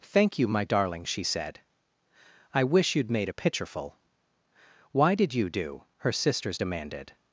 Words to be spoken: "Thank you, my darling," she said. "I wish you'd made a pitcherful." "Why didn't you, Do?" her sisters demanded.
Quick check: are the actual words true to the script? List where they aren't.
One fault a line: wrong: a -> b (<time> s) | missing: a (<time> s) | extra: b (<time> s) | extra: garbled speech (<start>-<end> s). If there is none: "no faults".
wrong: didn't -> did (5.1 s)